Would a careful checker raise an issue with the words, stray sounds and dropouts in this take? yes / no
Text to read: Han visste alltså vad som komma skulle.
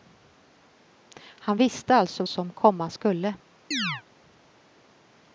yes